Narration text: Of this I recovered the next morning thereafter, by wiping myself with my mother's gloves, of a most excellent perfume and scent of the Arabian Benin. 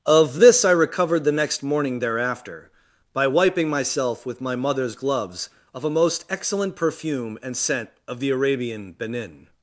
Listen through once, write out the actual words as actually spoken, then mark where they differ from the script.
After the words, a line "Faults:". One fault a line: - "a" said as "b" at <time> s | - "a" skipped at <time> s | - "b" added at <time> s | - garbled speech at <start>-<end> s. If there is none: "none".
Of this I recovered the next morning thereafter, by wiping myself with my mother's gloves, of a most excellent perfume and scent of the Arabian Benin.
Faults:
none